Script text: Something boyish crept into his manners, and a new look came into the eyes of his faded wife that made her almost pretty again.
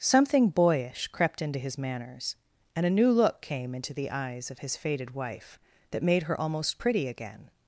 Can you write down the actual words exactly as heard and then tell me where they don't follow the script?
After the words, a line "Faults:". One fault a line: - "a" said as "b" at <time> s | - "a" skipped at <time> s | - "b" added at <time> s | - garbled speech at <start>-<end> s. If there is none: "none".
Something boyish crept into his manners, and a new look came into the eyes of his faded wife that made her almost pretty again.
Faults:
none